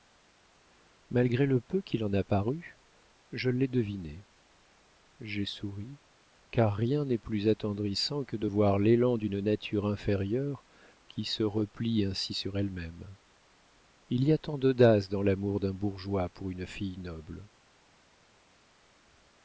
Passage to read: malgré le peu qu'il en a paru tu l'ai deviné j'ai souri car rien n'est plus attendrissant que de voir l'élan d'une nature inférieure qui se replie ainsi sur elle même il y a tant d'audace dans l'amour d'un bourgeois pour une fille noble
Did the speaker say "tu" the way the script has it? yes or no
no